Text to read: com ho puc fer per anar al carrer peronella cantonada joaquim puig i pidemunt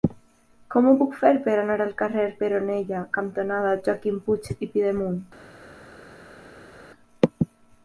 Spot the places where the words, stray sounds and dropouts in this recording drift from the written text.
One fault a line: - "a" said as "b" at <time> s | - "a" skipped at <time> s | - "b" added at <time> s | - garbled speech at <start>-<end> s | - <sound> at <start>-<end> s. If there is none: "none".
none